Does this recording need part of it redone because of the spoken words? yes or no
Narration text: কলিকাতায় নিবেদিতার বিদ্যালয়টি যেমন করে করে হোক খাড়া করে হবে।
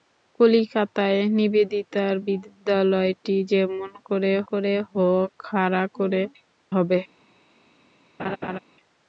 no